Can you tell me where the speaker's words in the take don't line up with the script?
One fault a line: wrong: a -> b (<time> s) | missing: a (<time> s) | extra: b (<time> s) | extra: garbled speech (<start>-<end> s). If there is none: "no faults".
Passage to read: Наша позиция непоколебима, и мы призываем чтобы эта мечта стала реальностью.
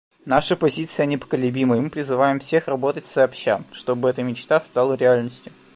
extra: всех работать сообща (2.4 s)